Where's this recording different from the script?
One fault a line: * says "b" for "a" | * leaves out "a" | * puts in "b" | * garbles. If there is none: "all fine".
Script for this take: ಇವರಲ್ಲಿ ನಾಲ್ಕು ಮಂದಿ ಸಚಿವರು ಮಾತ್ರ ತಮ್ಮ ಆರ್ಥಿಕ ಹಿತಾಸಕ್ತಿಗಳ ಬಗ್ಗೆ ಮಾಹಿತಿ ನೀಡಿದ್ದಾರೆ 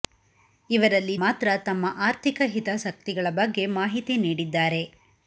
* leaves out "ನಾಲ್ಕು ಮಂದಿ ಸಚಿವರು"